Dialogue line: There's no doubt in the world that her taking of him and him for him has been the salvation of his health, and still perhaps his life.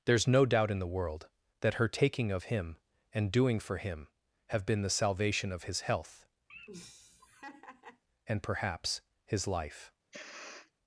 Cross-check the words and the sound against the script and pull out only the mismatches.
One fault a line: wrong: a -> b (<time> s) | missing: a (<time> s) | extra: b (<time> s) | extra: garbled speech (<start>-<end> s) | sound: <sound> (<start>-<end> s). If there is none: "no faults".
wrong: him -> doing (3.3 s)
wrong: has -> have (4.5 s)
sound: laugh (6.5-8.0 s)
missing: still (8.4 s)
sound: sniff (10.1-10.7 s)